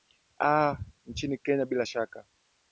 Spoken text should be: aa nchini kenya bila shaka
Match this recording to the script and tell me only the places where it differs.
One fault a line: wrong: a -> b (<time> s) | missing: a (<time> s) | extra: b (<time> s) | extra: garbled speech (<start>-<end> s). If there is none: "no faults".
no faults